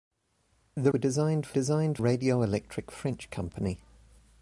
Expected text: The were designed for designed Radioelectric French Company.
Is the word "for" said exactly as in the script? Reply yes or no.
yes